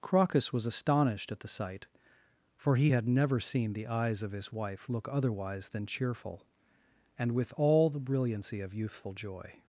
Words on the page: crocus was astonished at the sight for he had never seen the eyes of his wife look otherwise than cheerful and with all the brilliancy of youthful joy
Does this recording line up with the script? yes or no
yes